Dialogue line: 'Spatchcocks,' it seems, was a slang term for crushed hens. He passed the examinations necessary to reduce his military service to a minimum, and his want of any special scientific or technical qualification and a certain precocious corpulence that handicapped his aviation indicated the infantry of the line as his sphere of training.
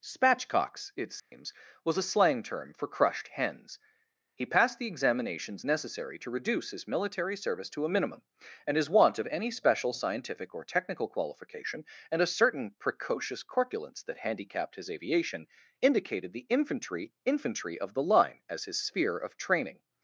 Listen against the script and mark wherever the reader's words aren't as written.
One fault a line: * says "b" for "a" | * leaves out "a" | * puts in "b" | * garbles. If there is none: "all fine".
* puts in "infantry"